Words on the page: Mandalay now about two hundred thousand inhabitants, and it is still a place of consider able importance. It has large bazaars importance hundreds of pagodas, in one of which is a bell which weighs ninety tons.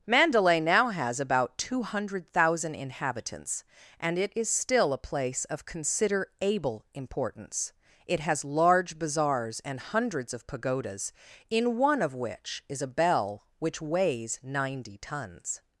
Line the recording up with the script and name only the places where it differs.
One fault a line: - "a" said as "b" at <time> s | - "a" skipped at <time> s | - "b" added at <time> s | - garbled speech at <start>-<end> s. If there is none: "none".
- "has" added at 0.9 s
- "importance" said as "and" at 9.6 s